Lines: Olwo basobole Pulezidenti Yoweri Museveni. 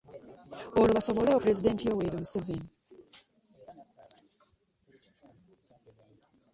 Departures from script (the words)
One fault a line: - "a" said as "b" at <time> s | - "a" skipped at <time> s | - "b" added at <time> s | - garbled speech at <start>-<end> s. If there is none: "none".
none